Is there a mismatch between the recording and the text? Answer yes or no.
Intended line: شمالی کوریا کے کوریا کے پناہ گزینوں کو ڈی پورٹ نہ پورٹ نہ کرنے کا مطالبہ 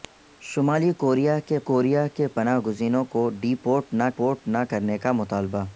no